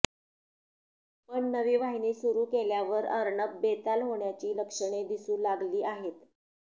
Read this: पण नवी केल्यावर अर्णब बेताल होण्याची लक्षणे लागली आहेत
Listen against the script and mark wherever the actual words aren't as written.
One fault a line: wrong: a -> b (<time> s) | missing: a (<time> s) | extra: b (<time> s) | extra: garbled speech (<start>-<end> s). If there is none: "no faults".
extra: वाहिनी सुरू (1.8 s)
extra: दिसू (5.1 s)